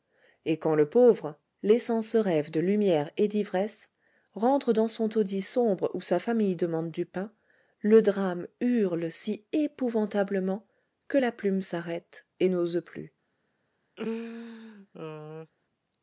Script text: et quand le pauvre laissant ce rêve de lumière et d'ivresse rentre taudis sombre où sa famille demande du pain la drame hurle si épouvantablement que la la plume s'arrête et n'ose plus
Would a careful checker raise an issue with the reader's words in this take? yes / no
yes